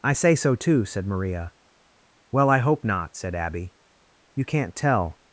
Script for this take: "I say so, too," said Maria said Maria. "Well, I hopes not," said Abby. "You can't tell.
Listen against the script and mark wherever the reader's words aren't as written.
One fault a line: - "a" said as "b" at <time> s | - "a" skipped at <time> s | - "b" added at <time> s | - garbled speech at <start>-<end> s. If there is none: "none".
- "said Maria" skipped at 1.5 s
- "hopes" said as "hope" at 2.6 s